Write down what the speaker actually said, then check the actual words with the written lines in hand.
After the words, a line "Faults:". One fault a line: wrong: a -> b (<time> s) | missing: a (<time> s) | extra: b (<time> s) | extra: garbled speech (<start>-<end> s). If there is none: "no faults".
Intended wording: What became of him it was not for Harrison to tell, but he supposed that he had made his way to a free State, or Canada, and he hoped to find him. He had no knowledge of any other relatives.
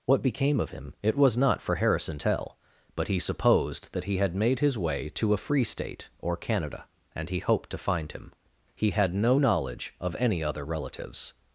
What became of him it was not for Harrison tell, but he supposed that he had made his way to a free State, or Canada, and he hoped to find him. He had no knowledge of any other relatives.
Faults:
missing: to (2.2 s)